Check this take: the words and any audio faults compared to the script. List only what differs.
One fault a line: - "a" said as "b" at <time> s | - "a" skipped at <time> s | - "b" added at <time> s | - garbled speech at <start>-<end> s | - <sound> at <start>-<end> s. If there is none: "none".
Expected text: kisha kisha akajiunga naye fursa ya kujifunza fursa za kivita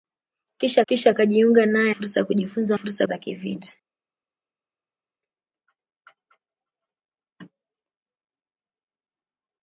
none